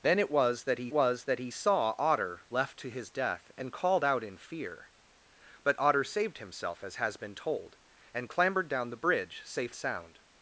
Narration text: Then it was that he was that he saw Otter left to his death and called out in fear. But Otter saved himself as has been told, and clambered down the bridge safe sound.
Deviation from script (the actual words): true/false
false